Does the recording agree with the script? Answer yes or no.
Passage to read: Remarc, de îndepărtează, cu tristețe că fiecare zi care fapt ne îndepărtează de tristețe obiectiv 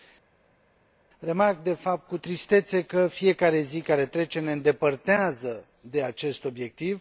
no